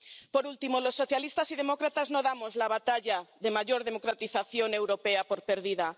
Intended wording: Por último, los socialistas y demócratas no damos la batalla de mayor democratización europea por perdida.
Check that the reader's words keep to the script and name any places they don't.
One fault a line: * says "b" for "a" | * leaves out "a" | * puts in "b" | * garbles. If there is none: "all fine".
all fine